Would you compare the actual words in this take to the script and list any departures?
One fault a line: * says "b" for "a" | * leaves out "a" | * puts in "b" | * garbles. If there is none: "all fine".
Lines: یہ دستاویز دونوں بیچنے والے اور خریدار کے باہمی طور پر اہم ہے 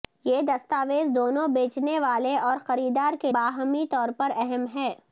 all fine